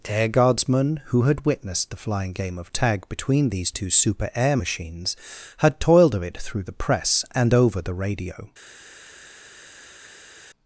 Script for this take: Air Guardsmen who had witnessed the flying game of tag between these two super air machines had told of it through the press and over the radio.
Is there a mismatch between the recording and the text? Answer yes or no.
yes